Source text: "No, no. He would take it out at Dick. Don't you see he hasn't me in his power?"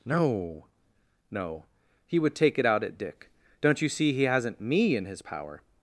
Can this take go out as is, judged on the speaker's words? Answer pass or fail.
pass